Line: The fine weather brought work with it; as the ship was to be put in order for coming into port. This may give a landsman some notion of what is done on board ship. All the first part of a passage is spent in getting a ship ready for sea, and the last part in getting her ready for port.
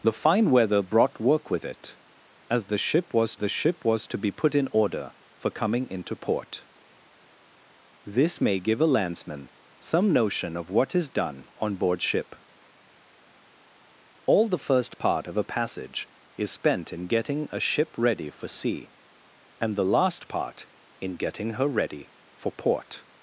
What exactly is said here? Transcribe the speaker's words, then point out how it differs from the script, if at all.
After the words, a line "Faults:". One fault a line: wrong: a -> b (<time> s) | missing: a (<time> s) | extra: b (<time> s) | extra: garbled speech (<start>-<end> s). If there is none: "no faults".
The fine weather brought work with it; as the ship was the ship was to be put in order for coming into port. This may give a landsman some notion of what is done on board ship. All the first part of a passage is spent in getting a ship ready for sea, and the last part in getting her ready for port.
Faults:
extra: the ship was (3.4 s)